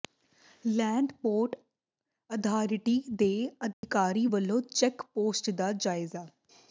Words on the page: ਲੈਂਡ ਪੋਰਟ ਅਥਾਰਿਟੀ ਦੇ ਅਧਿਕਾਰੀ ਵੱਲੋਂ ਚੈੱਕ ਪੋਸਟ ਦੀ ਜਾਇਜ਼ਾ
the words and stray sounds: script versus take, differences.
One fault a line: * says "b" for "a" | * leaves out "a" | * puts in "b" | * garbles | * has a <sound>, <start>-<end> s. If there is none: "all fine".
* has a dropout, 3.7-3.8 s
* says "ਦਾ" for "ਦੀ"